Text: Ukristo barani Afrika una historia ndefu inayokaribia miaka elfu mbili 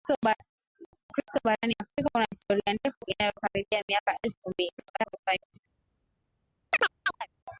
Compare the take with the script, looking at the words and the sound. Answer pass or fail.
fail